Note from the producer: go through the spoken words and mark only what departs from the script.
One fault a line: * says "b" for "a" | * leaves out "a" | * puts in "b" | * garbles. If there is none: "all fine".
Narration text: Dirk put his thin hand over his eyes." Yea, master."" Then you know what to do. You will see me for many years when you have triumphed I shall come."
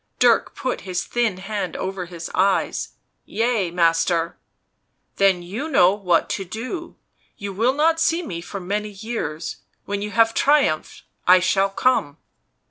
* puts in "not"